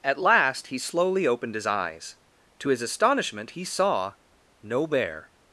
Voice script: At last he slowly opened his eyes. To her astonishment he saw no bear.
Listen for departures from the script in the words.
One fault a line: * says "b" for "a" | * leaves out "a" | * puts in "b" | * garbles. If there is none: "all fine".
* says "his" for "her"